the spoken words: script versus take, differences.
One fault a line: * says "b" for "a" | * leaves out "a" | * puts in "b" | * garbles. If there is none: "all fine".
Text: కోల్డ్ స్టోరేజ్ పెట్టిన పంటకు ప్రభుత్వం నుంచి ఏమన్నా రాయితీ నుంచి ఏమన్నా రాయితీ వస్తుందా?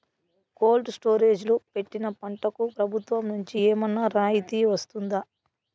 * puts in "లో"
* leaves out "నుంచి ఏమన్నా రాయితీ"